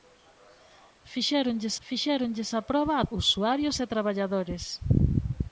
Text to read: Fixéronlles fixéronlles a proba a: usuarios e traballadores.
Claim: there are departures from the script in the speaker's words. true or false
false